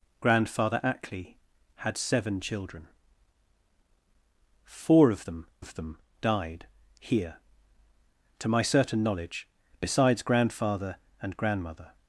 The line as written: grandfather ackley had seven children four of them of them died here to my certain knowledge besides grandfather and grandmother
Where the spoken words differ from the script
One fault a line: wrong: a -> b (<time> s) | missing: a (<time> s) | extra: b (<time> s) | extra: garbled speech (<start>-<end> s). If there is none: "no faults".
no faults